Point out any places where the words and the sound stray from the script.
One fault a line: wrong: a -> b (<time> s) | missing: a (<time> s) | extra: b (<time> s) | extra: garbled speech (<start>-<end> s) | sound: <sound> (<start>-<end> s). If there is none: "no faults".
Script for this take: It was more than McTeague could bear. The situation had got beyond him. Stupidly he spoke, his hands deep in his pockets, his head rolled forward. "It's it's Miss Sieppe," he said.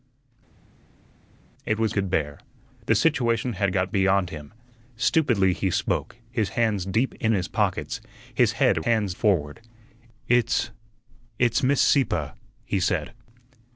missing: more than McTeague (1.9 s)
wrong: rolled -> hands (8.9 s)